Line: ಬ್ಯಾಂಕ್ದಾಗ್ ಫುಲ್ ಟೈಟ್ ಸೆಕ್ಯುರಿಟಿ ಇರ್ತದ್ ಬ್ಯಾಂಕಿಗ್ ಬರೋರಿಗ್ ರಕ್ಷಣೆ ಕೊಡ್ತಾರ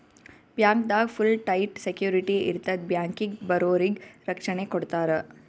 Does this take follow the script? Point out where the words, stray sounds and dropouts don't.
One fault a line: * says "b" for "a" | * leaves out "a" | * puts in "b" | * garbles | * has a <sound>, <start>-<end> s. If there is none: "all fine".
all fine